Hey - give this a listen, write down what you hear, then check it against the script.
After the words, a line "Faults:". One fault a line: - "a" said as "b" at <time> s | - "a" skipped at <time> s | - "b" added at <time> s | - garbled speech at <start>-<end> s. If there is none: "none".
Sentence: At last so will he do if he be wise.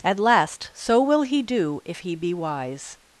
At last so will he do if he be wise.
Faults:
none